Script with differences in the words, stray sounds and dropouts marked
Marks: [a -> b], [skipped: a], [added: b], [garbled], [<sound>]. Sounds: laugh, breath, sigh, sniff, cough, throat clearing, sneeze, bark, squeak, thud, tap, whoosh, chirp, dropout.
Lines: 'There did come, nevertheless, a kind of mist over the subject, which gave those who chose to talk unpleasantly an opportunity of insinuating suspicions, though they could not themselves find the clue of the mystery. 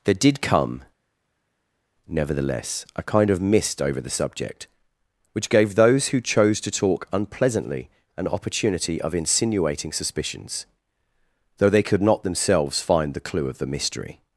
'There did come, nevertheless, a kind of mist over the subject, which gave those who chose to talk unpleasantly an opportunity of insinuating suspicions, though they could not themselves find the clue of the mystery.